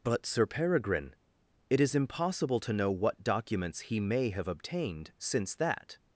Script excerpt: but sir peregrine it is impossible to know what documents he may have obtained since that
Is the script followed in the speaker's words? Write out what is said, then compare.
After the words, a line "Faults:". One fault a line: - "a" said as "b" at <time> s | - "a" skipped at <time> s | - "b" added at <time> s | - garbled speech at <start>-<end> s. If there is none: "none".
but sir peregrine it is impossible to know what documents he may have obtained since that
Faults:
none